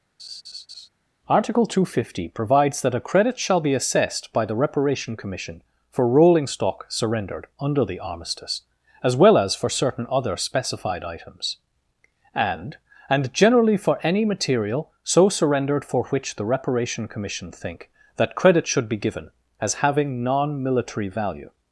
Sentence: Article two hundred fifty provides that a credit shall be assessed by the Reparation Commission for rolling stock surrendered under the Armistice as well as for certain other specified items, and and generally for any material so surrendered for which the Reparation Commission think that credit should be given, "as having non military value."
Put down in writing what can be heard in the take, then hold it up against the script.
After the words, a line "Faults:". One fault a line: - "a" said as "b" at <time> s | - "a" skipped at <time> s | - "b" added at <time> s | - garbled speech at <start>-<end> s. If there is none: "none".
Article two hundred fifty provides that a credit shall be assessed by the Reparation Commission for rolling stock surrendered under the Armistice as well as for certain other specified items, and and generally for any material so surrendered for which the Reparation Commission think that credit should be given, "as having non military value."
Faults:
none